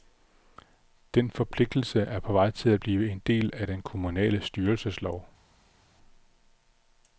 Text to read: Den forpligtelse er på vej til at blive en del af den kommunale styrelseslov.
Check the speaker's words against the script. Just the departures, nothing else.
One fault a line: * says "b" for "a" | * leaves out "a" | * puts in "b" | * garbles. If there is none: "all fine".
all fine